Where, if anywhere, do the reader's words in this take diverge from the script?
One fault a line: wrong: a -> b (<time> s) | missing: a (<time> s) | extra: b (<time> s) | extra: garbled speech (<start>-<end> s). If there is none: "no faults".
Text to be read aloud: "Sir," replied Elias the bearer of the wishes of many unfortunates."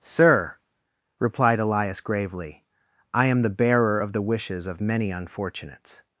extra: gravely I am (2.0 s)